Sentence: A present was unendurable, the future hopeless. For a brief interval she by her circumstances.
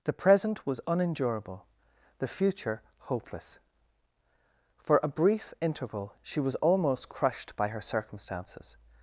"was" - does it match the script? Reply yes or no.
yes